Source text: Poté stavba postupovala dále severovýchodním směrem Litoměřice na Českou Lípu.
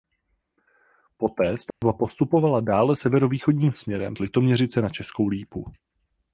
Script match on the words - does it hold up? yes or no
yes